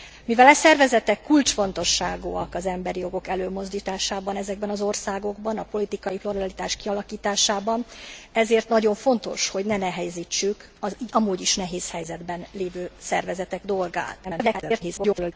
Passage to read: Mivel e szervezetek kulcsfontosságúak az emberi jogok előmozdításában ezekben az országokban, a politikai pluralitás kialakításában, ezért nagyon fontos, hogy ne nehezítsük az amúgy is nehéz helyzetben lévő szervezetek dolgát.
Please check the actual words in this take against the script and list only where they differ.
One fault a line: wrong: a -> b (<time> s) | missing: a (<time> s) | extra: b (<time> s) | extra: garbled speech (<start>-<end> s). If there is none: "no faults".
extra: garbled speech (14.2-15.3 s)